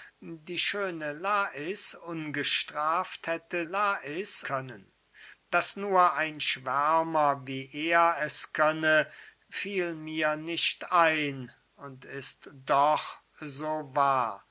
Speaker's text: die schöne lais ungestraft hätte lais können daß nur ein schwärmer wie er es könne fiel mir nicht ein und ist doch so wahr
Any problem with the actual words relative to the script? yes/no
no